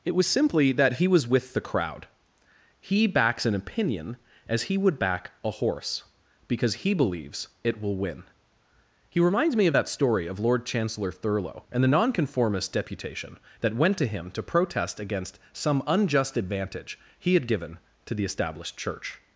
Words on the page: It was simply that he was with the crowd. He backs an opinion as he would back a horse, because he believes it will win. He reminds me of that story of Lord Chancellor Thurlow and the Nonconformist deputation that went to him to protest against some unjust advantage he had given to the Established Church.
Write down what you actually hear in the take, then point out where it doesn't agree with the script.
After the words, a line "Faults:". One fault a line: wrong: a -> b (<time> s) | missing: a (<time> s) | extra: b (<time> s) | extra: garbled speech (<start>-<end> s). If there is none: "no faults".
It was simply that he was with the crowd. He backs an opinion as he would back a horse, because he believes it will win. He reminds me of that story of Lord Chancellor Thurlow and the Nonconformist deputation that went to him to protest against some unjust advantage he had given to the Established Church.
Faults:
no faults